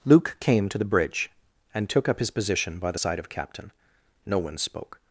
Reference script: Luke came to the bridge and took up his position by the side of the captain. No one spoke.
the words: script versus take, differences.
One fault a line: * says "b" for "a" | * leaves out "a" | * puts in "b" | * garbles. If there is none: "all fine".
* leaves out "the"